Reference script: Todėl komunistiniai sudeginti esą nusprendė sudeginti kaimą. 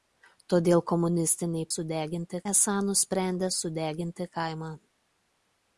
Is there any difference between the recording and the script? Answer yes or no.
no